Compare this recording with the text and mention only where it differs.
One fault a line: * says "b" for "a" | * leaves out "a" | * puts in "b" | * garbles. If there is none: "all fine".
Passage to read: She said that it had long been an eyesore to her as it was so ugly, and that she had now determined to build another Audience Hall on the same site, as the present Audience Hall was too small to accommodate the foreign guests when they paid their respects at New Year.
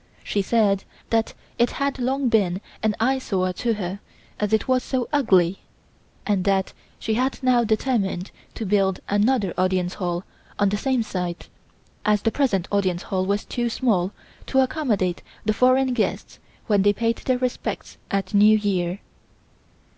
all fine